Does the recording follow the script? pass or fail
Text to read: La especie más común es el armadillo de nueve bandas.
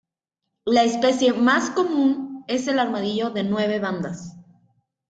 pass